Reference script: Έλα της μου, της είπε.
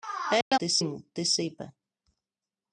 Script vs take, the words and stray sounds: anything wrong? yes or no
yes